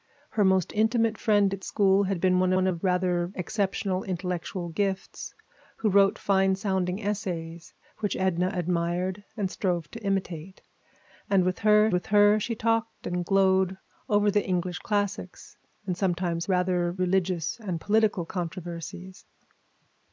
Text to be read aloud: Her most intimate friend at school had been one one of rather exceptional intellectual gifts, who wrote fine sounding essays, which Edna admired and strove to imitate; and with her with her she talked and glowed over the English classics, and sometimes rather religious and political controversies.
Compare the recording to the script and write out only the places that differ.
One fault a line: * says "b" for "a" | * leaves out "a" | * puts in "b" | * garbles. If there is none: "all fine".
all fine